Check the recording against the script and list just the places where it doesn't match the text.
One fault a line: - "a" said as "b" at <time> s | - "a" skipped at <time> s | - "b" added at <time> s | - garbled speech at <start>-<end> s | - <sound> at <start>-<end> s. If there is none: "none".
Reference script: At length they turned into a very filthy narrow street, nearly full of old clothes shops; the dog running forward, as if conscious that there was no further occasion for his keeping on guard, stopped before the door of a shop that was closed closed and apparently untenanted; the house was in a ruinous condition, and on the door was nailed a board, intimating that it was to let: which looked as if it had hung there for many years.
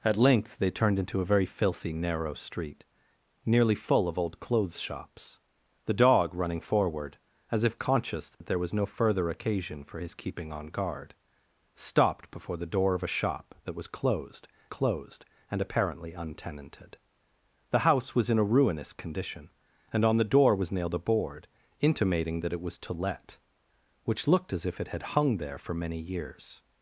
- dropout at 8.3-8.4 s